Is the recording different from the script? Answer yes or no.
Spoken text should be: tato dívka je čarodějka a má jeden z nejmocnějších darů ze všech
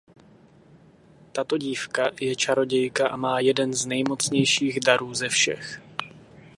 no